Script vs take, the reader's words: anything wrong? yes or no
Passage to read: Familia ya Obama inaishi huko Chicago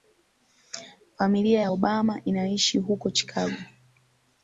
no